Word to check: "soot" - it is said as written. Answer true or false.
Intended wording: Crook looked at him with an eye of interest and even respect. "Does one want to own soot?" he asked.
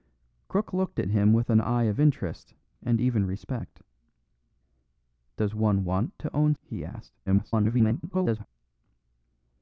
false